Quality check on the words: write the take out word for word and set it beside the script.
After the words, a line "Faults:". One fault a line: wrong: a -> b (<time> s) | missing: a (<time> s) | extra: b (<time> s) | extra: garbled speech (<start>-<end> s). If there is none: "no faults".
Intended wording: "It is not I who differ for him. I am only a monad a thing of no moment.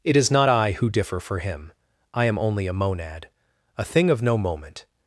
"It is not I who differ for him. I am only a monad a thing of no moment.
Faults:
no faults